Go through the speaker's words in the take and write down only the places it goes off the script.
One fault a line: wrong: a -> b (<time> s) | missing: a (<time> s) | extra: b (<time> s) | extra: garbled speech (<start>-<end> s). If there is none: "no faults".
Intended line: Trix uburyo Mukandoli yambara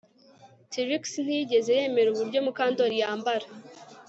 extra: ntiyigeze yemera (1.2 s)